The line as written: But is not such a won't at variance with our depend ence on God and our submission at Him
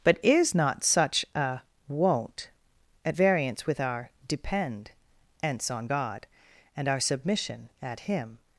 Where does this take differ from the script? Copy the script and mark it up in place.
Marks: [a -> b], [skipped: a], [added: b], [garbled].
But is not such a won't at variance with our depend ence on God and our submission at Him